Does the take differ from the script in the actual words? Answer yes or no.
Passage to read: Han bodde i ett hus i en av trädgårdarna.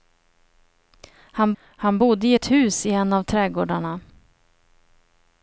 yes